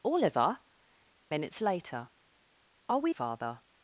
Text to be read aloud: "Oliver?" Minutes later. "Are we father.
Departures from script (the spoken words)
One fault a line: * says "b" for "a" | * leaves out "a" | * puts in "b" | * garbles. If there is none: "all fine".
all fine